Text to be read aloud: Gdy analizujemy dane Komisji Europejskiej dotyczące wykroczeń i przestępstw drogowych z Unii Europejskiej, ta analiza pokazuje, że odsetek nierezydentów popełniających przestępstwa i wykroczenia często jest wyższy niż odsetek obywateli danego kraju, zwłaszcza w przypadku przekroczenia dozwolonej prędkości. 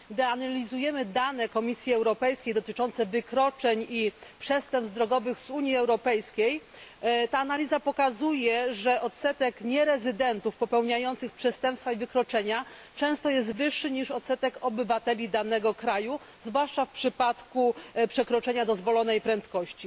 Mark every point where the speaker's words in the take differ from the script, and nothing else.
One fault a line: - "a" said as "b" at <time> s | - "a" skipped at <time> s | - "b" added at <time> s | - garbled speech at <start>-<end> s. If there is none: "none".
none